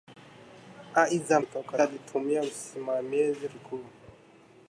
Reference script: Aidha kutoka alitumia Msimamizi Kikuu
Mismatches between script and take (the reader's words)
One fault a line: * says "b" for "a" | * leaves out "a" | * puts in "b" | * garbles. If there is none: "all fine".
all fine